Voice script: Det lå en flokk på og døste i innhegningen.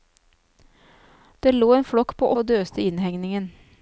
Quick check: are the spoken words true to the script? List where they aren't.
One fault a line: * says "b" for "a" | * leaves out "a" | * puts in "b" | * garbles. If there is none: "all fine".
all fine